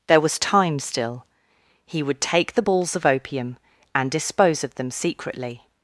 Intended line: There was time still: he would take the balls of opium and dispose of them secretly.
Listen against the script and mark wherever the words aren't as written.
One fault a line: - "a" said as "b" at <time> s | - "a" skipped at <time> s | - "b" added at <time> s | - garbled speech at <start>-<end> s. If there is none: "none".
none